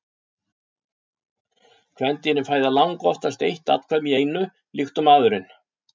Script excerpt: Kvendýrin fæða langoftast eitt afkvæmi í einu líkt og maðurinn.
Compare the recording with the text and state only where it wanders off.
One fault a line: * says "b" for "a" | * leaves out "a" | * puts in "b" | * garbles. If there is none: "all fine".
all fine